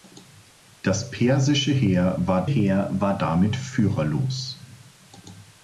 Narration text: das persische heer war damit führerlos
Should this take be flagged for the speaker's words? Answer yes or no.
yes